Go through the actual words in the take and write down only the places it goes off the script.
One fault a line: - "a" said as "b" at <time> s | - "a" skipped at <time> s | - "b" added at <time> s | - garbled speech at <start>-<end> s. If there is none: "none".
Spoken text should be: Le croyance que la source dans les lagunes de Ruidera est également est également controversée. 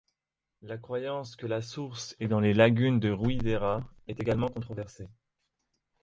- "Le" said as "La" at 0.6 s
- "est" added at 2.2 s
- "est également" skipped at 4.5 s